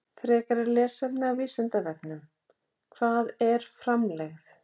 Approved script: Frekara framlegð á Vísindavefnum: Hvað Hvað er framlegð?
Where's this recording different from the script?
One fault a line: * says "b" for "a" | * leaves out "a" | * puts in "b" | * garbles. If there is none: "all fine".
* says "lesefni" for "framlegð"
* leaves out "Hvað"